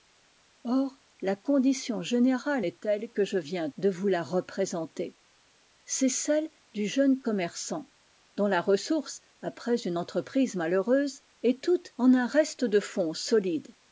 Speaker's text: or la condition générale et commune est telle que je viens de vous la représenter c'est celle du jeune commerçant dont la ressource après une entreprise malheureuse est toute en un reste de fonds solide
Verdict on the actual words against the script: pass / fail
fail